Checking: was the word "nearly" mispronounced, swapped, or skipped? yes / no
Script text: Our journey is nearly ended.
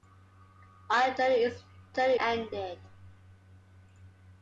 yes